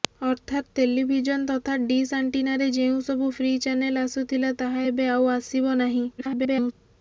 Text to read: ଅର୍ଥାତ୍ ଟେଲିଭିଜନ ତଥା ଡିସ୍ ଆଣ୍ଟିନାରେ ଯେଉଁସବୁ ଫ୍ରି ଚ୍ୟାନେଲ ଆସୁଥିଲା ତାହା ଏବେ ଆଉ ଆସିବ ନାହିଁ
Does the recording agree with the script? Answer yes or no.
no